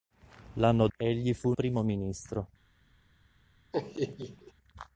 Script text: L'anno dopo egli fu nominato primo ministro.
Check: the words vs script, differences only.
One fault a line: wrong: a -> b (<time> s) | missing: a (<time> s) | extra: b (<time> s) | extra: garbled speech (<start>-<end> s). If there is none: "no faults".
missing: dopo (0.9 s)
missing: nominato (1.5 s)